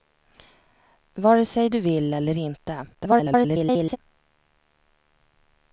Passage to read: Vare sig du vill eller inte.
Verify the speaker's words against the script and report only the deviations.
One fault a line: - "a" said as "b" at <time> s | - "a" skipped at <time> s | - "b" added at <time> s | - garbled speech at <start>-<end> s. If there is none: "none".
- garbled speech at 2.9-4.0 s